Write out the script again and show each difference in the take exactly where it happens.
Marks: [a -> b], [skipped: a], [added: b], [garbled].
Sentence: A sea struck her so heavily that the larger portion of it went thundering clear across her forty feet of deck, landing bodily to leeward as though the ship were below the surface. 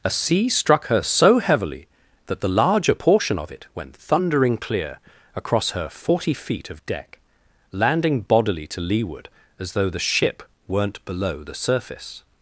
A sea struck her so heavily that the larger portion of it went thundering clear across her forty feet of deck, landing bodily to leeward as though the ship [were -> weren't] below the surface.